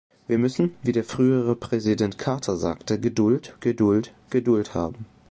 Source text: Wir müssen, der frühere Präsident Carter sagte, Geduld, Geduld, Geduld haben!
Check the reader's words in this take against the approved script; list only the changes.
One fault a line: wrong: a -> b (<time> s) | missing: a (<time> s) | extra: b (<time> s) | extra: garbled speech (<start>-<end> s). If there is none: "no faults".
extra: wie (0.8 s)